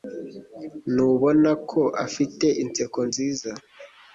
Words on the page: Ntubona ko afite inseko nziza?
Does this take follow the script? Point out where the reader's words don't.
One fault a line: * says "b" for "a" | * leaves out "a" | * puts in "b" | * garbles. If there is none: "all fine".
all fine